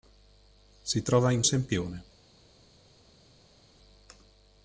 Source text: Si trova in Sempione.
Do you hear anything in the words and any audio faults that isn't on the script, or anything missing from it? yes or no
no